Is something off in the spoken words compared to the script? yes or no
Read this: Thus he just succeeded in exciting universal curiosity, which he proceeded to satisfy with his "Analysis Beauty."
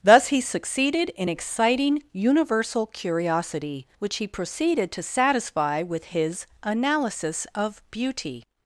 yes